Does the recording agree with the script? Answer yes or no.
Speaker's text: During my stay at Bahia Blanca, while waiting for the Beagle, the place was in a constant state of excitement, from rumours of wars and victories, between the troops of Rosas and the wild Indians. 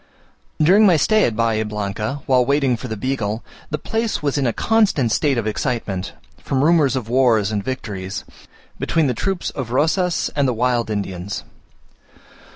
yes